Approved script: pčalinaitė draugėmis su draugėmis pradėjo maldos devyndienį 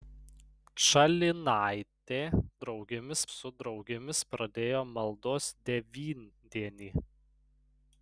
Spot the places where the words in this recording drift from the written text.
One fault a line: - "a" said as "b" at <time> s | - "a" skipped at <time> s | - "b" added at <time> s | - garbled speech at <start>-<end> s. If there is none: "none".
none